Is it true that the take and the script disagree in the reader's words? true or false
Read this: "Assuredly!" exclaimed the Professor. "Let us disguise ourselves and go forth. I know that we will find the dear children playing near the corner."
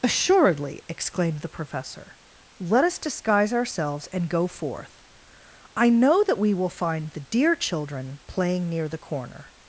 false